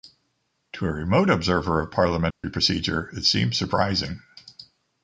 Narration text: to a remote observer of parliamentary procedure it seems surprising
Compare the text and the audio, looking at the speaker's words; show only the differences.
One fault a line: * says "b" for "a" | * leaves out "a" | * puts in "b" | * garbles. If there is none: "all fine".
all fine